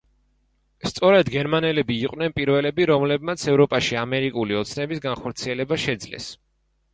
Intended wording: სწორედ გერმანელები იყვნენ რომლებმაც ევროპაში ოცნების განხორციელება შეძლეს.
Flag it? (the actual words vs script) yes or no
yes